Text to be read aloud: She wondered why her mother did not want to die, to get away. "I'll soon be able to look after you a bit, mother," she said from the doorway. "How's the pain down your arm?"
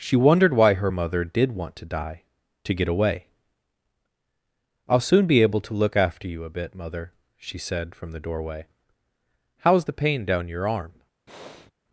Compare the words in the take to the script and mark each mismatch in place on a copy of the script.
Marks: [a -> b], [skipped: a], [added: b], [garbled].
She wondered why her mother did [skipped: not] want to die, to get away. "I'll soon be able to look after you a bit, mother," she said from the doorway. "How's the pain down your arm?"